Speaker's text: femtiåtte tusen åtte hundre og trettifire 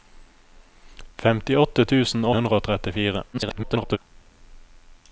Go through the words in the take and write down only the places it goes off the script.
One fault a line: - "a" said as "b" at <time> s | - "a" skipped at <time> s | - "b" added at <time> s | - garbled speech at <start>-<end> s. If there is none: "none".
- "åtte" skipped at 2.2 s
- garbled speech at 3.3-4.0 s